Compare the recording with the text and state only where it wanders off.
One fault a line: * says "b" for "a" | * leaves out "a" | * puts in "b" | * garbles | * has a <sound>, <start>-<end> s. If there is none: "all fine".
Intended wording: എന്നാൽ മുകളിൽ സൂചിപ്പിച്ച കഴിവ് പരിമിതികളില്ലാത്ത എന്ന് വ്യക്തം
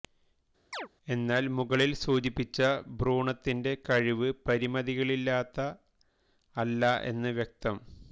* has a chirp, 0.7-0.9 s
* puts in "ഭ്രൂണത്തിന്റെ"
* puts in "അല്ല"